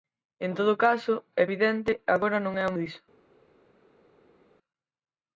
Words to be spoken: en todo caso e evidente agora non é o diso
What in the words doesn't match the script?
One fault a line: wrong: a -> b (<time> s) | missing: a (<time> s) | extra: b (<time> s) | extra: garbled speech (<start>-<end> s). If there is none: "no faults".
no faults